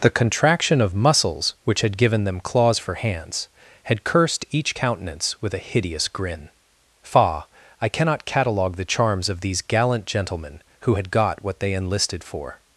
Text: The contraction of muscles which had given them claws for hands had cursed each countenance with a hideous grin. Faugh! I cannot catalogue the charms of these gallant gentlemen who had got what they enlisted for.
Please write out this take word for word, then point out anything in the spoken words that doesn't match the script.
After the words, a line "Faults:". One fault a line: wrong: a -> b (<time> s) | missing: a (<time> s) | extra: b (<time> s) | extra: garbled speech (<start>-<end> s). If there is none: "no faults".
The contraction of muscles which had given them claws for hands had cursed each countenance with a hideous grin. Faugh! I cannot catalogue the charms of these gallant gentlemen who had got what they enlisted for.
Faults:
no faults